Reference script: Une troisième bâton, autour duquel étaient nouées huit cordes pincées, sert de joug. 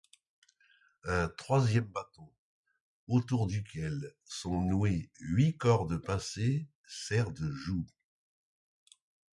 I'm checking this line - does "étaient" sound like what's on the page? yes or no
no